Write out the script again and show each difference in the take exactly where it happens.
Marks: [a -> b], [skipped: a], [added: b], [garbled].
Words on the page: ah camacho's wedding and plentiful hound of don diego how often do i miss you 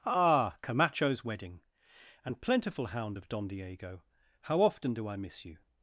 ah camacho's wedding and plentiful hound of don diego how often do i miss you